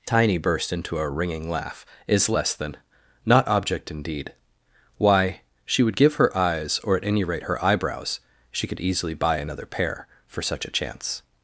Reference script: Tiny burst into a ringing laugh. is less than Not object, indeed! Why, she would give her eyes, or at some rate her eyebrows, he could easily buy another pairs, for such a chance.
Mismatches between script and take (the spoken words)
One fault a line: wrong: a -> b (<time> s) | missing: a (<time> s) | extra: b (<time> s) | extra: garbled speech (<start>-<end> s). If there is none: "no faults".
wrong: some -> any (7.0 s)
wrong: he -> she (8.5 s)
wrong: pairs -> pair (9.7 s)